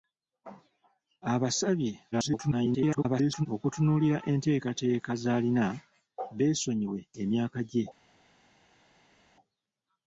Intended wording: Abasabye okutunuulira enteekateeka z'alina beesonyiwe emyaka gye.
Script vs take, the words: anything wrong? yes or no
yes